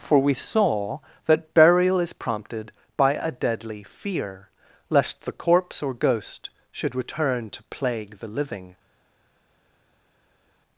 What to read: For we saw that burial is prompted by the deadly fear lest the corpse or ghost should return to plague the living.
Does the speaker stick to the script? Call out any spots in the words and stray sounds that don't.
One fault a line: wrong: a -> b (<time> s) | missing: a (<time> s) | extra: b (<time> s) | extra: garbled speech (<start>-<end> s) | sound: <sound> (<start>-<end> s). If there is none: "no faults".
wrong: the -> a (3.1 s)